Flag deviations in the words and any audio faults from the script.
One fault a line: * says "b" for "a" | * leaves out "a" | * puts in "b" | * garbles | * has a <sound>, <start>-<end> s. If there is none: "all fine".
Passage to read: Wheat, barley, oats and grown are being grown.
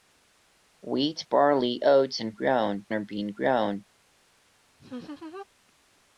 * has a laugh, 4.8-5.5 s